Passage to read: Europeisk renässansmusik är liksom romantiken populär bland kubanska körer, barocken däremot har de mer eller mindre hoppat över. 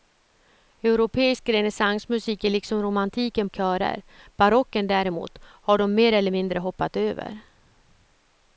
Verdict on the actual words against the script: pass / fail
fail